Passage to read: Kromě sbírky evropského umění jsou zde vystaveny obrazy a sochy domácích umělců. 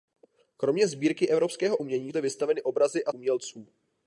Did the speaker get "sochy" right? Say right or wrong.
wrong